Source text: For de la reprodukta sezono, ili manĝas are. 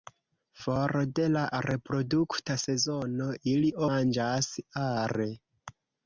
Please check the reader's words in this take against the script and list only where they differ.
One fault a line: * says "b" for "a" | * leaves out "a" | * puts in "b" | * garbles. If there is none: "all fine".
all fine